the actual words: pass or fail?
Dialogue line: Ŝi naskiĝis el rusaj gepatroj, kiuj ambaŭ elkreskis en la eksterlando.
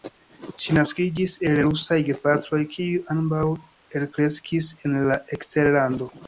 pass